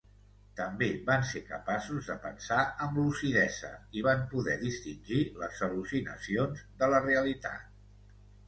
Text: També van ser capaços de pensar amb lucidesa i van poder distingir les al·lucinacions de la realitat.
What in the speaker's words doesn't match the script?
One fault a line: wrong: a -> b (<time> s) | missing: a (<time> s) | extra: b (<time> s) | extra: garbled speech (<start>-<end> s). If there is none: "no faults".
no faults